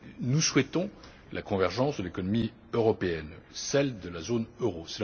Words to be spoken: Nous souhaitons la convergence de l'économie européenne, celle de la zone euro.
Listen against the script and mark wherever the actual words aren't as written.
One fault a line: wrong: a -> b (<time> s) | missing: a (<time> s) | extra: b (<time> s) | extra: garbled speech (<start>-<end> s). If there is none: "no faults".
no faults